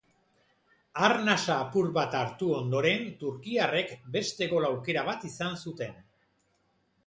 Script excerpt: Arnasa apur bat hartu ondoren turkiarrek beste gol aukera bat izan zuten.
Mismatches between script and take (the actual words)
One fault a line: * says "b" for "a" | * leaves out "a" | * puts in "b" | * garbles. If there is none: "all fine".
all fine